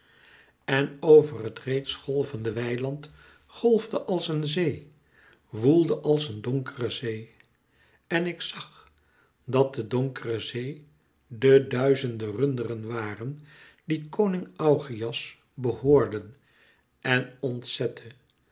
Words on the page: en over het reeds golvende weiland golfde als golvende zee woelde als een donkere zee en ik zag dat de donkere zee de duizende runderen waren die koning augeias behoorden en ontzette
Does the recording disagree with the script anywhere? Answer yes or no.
yes